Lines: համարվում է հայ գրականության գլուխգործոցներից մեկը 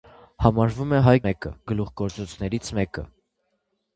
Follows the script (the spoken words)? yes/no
no